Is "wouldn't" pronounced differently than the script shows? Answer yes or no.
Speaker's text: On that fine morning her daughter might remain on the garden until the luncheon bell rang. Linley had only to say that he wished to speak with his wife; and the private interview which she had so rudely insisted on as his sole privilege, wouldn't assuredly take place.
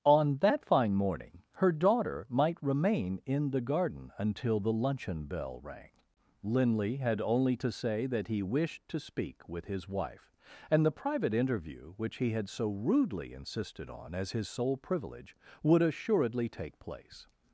yes